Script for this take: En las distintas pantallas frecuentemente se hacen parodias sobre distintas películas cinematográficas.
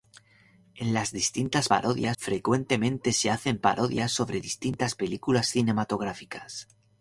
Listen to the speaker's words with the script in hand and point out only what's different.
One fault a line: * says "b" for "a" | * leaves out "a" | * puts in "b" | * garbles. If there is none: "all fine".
* says "parodias" for "pantallas"